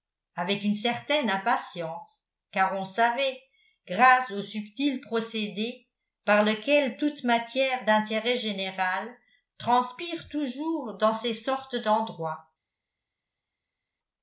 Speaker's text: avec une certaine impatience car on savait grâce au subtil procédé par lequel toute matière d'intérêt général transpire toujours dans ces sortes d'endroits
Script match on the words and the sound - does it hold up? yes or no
yes